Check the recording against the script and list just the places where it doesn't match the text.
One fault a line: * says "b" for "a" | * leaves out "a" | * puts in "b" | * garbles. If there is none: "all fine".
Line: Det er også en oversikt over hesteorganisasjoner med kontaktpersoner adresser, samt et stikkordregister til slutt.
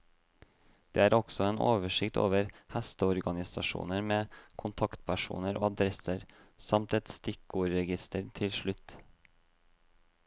all fine